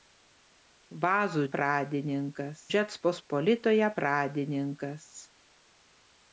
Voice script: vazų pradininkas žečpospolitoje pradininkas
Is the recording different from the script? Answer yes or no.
no